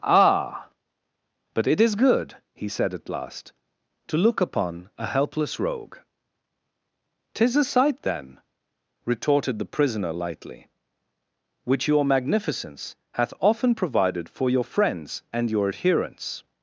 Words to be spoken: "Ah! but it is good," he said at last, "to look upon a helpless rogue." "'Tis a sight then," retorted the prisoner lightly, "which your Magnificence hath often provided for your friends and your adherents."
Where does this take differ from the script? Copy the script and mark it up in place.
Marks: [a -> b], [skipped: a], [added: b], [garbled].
"Ah! but it is good," he said at last, "to look upon a helpless rogue." "'Tis a sight then," retorted the prisoner lightly, "which your Magnificence hath often provided for your friends and your adherents."